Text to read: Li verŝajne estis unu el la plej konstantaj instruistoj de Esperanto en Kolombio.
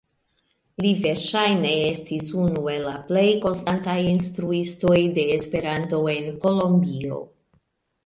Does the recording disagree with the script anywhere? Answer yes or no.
no